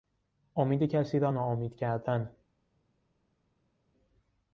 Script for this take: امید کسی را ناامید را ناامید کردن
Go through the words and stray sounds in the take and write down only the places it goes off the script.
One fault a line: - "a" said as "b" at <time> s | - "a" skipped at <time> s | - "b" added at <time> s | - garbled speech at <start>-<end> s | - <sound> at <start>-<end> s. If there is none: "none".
- "را ناامید" skipped at 1.7 s